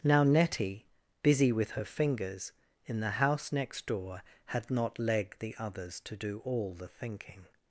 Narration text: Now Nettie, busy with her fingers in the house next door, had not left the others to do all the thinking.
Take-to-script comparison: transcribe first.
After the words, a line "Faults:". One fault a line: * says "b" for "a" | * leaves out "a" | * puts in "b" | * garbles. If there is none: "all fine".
Now Nettie, busy with her fingers in the house next door, had not leg the others to do all the thinking.
Faults:
* says "leg" for "left"